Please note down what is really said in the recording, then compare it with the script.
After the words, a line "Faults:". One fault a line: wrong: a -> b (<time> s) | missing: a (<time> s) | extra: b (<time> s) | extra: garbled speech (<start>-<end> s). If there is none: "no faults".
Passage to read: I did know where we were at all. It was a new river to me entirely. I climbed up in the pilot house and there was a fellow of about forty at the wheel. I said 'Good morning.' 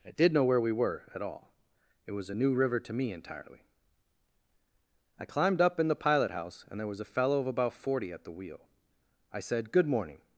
I did know where we were at all. It was a new river to me entirely. I climbed up in the pilot house and there was a fellow of about forty at the wheel. I said 'Good morning.'
Faults:
no faults